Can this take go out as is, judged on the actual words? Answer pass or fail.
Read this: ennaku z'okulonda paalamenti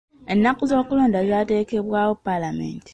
fail